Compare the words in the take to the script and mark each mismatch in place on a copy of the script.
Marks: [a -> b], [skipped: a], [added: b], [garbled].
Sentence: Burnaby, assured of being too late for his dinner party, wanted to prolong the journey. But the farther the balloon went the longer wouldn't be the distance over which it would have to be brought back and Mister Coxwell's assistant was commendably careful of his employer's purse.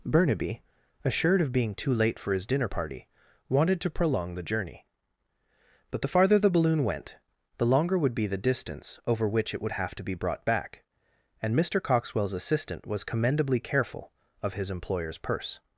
Burnaby, assured of being too late for his dinner party, wanted to prolong the journey. But the farther the balloon went the longer [wouldn't -> would] be the distance over which it would have to be brought back and Mister Coxwell's assistant was commendably careful of his employer's purse.